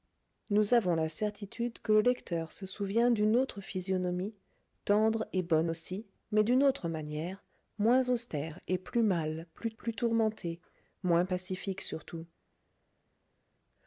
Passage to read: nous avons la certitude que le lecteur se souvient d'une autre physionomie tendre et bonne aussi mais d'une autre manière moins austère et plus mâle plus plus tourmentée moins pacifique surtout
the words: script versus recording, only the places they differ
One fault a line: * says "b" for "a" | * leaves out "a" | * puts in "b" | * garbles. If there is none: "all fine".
all fine